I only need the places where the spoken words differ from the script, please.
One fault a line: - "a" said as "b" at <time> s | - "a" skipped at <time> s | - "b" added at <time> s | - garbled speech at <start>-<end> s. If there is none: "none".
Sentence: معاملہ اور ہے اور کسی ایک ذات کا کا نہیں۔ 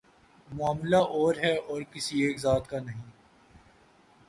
- "کا" skipped at 2.8 s